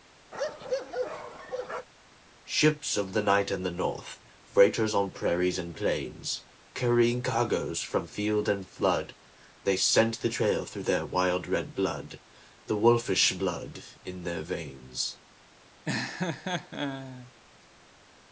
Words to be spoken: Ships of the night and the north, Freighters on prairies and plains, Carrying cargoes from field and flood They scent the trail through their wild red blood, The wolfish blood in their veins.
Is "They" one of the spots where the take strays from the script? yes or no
no